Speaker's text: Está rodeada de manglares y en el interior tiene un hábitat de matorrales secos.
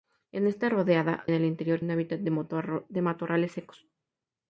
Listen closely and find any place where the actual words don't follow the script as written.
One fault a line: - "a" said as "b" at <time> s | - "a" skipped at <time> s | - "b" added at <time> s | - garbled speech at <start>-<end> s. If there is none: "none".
- "de manglares y" skipped at 1.2 s
- "tiene" skipped at 1.8 s